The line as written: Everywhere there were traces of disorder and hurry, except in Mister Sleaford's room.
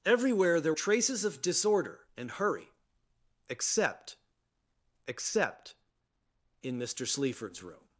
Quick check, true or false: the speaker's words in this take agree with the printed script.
false